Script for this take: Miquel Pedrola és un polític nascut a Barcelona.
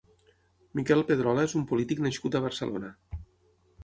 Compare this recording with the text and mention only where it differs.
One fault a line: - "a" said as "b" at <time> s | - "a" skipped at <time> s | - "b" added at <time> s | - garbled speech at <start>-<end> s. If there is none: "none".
none